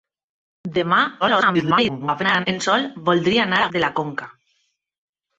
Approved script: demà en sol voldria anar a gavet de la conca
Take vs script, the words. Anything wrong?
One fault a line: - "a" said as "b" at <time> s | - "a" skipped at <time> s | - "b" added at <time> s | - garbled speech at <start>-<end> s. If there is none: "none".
- garbled speech at 1.2-2.5 s
- "gavet" skipped at 3.7 s